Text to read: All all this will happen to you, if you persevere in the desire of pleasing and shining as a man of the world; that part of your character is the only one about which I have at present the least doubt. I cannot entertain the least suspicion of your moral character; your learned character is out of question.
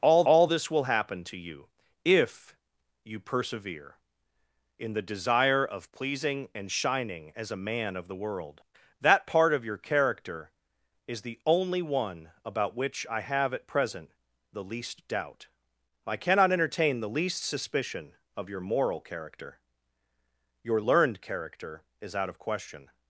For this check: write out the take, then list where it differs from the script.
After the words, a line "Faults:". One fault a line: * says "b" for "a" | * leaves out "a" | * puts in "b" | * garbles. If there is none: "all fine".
All all this will happen to you, if you persevere in the desire of pleasing and shining as a man of the world; that part of your character is the only one about which I have at present the least doubt. I cannot entertain the least suspicion of your moral character; your learned character is out of question.
Faults:
all fine